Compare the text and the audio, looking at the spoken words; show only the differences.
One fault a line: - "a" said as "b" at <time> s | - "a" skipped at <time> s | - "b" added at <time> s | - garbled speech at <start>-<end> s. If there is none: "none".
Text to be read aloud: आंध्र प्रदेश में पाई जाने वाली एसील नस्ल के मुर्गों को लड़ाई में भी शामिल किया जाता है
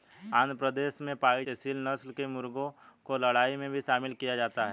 - "जाने वाली" skipped at 1.4 s